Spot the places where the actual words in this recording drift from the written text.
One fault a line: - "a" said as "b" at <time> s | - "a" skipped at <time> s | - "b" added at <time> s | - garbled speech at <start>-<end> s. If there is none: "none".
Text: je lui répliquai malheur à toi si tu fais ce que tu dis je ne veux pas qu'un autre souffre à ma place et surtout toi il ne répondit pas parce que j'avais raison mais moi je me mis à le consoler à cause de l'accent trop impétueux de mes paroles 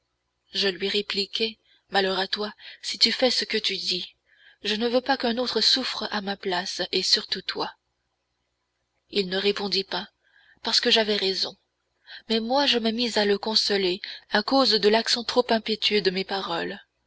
none